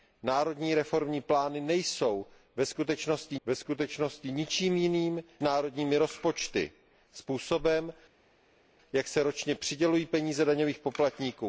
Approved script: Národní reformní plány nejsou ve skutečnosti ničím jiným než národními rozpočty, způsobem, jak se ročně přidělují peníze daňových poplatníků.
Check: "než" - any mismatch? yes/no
yes